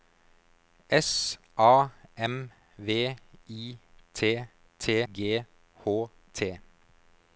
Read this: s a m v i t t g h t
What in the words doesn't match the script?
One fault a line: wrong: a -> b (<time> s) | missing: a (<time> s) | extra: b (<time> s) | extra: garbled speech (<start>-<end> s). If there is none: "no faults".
no faults